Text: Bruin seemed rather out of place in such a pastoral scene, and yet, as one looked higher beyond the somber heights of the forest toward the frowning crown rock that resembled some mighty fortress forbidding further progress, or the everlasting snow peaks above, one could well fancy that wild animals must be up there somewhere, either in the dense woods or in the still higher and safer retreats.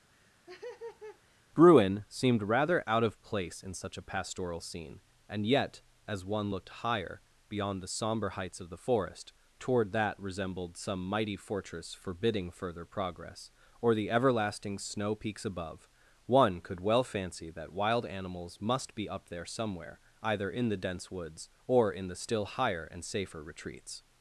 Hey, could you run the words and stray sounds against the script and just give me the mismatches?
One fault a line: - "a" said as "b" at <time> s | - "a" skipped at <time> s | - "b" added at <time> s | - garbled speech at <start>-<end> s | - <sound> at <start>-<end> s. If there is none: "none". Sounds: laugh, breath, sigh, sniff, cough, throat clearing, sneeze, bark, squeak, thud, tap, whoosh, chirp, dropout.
- laugh at 0.1-1.4 s
- "the frowning crown rock" skipped at 9.9 s